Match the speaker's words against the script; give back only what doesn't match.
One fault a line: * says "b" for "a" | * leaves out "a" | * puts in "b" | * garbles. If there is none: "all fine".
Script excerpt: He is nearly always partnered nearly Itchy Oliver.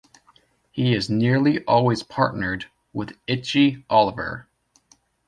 * says "with" for "nearly"